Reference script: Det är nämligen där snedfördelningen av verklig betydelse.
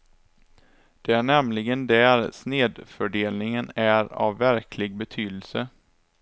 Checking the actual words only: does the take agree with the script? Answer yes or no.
no